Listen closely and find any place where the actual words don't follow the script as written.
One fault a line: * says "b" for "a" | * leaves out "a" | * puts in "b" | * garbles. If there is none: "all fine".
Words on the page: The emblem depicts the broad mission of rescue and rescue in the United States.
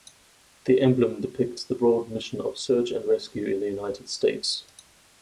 * says "search" for "rescue"